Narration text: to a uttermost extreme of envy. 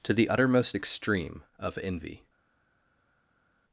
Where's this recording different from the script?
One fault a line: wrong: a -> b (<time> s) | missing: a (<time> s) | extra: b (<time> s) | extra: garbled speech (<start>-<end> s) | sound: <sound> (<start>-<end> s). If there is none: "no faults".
wrong: a -> the (0.1 s)